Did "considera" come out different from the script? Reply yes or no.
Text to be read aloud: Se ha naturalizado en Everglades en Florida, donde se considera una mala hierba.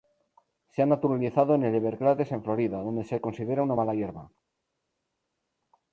no